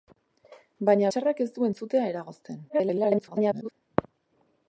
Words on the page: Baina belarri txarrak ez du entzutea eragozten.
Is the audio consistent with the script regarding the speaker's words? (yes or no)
no